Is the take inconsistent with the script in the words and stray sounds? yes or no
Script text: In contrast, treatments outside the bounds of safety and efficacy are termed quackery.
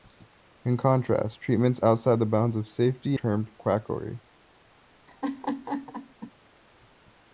yes